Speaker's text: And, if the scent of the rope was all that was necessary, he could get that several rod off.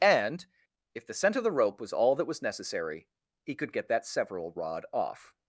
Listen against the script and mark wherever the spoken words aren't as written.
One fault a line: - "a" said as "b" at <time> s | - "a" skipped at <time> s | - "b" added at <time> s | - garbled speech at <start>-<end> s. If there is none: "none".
none